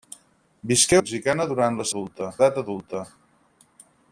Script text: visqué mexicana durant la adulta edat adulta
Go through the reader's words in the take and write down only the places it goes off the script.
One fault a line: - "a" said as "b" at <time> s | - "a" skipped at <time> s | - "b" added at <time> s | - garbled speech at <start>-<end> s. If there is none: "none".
none